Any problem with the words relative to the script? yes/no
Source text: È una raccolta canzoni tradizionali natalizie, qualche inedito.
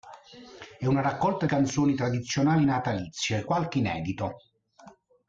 no